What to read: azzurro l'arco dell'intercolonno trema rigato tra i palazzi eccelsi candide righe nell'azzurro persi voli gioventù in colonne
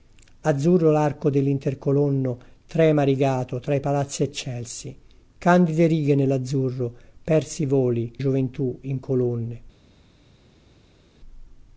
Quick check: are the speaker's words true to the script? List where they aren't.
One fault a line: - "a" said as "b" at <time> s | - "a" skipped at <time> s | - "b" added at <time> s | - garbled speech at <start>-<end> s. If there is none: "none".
none